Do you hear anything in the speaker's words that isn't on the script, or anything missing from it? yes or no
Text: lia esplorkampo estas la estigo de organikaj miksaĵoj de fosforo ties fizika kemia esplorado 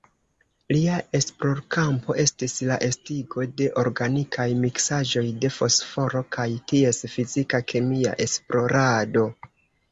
yes